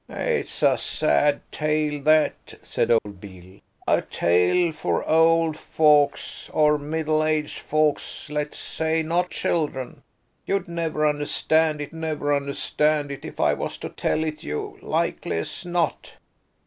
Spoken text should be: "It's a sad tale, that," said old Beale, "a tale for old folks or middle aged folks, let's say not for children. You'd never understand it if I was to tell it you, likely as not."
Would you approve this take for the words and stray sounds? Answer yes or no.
no